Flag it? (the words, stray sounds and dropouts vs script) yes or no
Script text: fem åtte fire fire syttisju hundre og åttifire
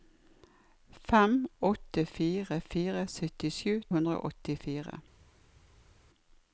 no